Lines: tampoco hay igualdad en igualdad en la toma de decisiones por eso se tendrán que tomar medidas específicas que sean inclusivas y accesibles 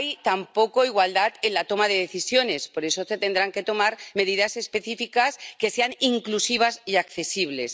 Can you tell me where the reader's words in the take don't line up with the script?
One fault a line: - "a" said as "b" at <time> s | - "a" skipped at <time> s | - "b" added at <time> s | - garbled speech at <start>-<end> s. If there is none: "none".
- "igualdad en" skipped at 1.5 s